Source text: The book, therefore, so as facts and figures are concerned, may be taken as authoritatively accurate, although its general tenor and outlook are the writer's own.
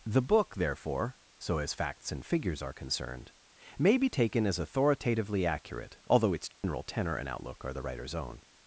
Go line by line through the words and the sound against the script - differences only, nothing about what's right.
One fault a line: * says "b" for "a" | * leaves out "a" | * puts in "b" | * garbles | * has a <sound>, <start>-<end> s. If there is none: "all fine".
* has a dropout, 6.5-6.6 s